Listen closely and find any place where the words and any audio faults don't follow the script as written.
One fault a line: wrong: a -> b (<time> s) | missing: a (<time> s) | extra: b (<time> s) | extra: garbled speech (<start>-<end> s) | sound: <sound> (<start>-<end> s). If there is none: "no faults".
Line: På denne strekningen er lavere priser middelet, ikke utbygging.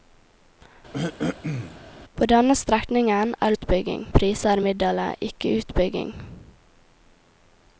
sound: throat clearing (0.9-1.8 s)
wrong: lavere -> utbygging (3.5 s)